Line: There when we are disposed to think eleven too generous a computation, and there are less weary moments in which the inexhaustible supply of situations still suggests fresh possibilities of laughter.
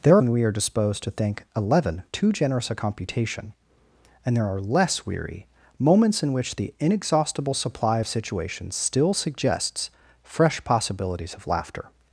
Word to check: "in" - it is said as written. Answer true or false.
true